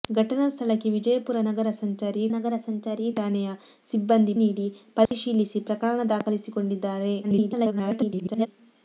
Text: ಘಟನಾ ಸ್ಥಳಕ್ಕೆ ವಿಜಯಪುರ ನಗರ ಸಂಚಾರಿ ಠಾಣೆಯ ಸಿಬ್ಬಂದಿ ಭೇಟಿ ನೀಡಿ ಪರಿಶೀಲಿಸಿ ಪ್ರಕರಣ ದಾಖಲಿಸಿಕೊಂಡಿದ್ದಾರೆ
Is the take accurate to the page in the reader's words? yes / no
no